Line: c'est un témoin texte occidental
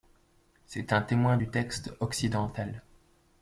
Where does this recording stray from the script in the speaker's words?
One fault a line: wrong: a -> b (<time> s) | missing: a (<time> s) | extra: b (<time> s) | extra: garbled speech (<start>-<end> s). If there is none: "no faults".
extra: du (1.3 s)